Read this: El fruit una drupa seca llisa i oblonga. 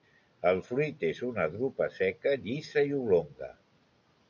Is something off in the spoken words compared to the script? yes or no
yes